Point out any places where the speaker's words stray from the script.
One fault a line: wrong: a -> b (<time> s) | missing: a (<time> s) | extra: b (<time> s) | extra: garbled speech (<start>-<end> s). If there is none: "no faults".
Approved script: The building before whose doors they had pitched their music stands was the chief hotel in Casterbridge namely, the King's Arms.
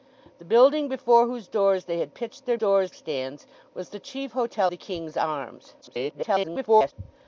wrong: music -> doors (2.5 s)
missing: in Casterbridge namely (4.7 s)
extra: garbled speech (5.8-6.9 s)